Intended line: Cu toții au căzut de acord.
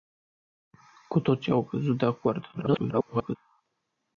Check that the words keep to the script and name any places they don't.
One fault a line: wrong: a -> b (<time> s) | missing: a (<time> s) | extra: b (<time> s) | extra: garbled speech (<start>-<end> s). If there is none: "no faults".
extra: garbled speech (2.5-3.4 s)